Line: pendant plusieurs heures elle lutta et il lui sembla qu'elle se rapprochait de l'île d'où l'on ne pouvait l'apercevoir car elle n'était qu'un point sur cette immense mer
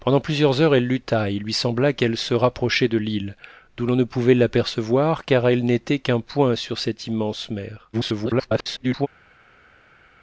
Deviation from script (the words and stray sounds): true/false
true